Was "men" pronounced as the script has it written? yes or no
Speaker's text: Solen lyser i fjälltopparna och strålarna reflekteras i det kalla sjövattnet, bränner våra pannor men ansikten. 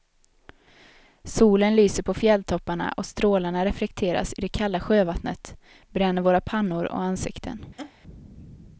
no